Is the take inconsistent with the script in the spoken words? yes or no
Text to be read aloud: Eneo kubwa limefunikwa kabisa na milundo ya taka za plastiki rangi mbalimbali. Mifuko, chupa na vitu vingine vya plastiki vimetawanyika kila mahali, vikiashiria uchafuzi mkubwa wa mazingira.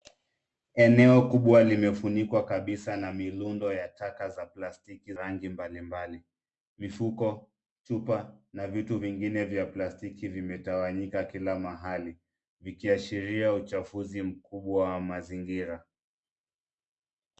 no